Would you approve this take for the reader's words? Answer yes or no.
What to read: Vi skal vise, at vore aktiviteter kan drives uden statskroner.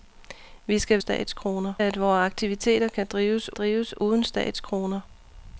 no